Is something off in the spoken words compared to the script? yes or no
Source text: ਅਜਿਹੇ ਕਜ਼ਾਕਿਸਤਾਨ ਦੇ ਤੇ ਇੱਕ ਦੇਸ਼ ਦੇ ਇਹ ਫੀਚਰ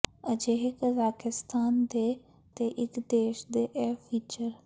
no